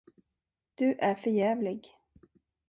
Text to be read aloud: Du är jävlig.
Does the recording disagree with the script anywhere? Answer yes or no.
yes